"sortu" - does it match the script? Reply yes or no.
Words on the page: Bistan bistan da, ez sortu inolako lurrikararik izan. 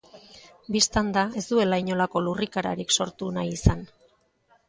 no